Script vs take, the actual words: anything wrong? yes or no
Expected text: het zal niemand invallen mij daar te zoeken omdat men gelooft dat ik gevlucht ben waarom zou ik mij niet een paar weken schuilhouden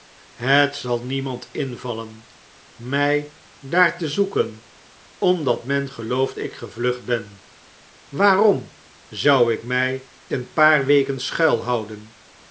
yes